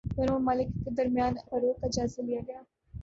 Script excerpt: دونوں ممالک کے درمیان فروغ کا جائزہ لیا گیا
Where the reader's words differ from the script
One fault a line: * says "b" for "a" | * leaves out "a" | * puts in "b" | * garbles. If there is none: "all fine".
all fine